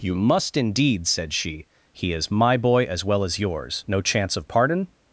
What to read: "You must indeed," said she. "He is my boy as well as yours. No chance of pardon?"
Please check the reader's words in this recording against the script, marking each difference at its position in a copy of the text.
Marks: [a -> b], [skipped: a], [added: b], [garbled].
"You must indeed," said she. "He is my boy as well as yours. No chance of pardon?"